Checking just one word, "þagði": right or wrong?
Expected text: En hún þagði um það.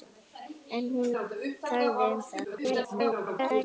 wrong